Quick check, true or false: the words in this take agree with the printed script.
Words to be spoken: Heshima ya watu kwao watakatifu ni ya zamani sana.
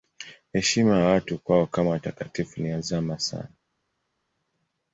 false